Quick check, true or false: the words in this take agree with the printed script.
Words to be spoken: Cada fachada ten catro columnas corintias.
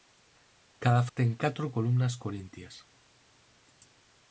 false